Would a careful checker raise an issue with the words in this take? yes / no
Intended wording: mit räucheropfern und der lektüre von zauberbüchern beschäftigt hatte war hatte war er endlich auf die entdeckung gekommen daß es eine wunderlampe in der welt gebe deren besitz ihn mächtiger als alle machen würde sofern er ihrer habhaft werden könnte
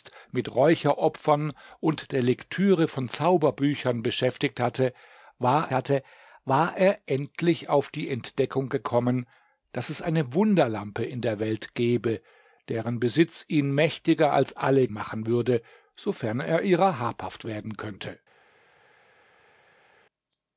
no